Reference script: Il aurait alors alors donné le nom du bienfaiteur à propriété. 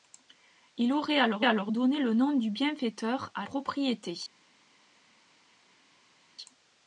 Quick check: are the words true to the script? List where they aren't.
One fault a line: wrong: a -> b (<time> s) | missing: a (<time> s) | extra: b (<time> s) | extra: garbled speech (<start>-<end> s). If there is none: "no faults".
no faults